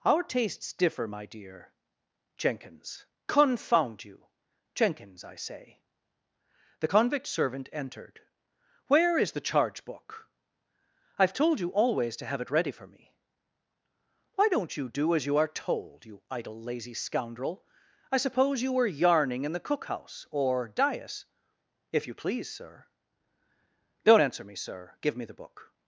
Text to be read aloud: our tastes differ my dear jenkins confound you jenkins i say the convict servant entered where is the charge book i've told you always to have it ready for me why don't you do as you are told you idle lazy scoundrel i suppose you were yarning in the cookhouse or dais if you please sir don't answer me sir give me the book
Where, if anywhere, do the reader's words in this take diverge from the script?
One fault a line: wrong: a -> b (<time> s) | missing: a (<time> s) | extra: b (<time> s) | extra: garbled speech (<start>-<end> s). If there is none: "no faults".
no faults